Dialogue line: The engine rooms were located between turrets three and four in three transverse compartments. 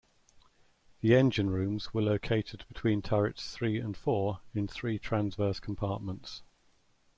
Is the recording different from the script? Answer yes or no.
no